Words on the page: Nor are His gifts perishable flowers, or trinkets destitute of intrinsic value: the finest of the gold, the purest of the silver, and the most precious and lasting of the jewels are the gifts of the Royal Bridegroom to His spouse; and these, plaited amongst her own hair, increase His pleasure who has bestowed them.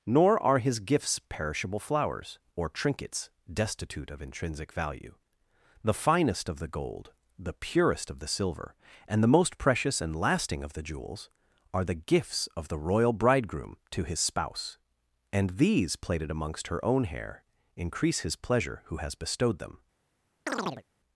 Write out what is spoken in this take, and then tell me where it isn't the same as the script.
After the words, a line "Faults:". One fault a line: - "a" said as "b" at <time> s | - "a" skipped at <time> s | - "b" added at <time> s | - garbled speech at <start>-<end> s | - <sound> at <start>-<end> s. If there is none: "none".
Nor are His gifts perishable flowers, or trinkets destitute of intrinsic value: the finest of the gold, the purest of the silver, and the most precious and lasting of the jewels are the gifts of the Royal Bridegroom to His spouse; and these, plaited amongst her own hair, increase His pleasure who has bestowed them.
Faults:
- chirp at 20.5-20.8 s